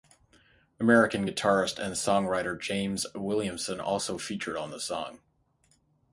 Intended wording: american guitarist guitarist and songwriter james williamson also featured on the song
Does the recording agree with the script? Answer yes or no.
no